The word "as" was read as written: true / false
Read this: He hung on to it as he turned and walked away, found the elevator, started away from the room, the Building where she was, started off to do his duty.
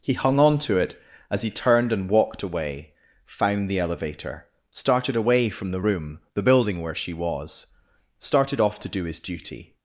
true